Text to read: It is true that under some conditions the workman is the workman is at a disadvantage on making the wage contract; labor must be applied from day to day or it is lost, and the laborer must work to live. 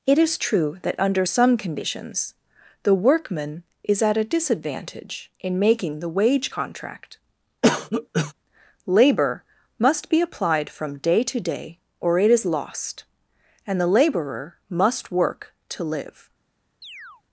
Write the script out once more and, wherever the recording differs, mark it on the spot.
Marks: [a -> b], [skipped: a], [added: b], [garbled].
It is true that under some conditions the workman is [skipped: the workman is] at a disadvantage [on -> in] making the wage contract; labor must be applied from day to day or it is lost, and the laborer must work to live.